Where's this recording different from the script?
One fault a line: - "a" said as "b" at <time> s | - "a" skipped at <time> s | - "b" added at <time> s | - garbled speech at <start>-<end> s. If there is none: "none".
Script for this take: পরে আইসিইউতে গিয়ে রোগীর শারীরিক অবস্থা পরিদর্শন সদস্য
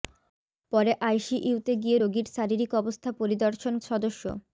none